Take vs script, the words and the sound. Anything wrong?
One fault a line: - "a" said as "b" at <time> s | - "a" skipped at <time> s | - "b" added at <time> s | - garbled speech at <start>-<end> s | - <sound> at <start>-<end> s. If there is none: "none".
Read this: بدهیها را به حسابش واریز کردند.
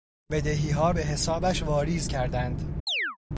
- "را" skipped at 0.9 s
- chirp at 2.9-3.2 s